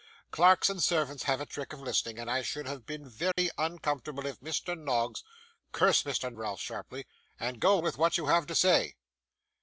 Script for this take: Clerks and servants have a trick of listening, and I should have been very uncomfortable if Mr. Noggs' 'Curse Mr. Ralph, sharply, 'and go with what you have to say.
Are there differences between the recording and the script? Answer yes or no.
no